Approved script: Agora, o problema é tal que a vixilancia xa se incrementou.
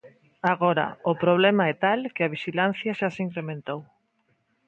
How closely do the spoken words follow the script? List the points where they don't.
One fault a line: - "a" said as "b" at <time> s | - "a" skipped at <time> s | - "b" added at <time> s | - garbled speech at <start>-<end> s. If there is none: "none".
none